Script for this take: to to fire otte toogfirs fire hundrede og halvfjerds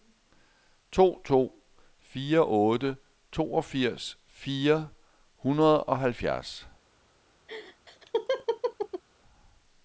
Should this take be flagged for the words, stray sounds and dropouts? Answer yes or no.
yes